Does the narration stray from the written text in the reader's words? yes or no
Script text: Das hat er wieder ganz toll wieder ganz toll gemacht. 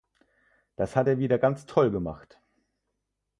yes